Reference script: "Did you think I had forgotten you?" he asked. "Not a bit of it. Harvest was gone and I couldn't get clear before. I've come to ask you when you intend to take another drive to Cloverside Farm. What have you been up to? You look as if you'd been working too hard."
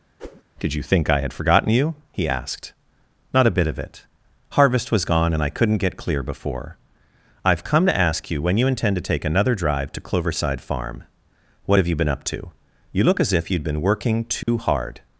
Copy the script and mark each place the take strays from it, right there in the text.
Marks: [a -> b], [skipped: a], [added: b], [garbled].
"Did you think I had forgotten you?" he asked. "Not a bit of it. Harvest was gone and I couldn't get clear before. I've come to ask you when you intend to take another drive to Cloverside Farm. What have you been up to? You look as if you'd been working too hard."